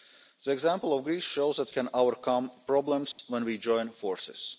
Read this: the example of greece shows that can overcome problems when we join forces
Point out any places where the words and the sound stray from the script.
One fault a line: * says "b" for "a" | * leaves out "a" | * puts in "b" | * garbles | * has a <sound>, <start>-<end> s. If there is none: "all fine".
* has a dropout, 3.1-3.2 s